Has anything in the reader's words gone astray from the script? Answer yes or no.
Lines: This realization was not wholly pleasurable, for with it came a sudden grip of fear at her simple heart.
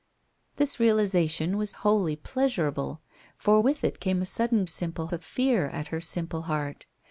yes